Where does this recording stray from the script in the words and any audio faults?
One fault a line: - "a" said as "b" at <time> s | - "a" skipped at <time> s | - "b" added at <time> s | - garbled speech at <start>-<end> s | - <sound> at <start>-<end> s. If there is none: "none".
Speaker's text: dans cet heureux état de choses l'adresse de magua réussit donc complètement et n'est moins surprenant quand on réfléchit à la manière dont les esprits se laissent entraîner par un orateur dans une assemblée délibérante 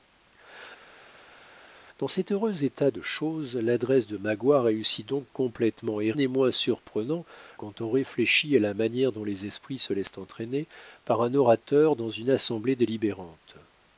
none